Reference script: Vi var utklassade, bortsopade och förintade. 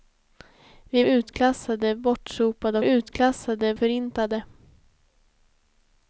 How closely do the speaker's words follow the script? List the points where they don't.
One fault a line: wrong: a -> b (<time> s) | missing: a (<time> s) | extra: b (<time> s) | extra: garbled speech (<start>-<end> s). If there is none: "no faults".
missing: var (1.0 s)
wrong: och -> utklassade (2.8 s)